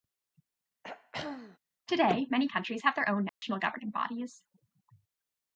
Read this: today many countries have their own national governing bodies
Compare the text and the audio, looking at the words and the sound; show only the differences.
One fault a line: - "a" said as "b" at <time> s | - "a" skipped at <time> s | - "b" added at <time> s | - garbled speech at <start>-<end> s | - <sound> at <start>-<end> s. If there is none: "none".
- throat clearing at 0.8-1.6 s
- dropout at 3.3-3.4 s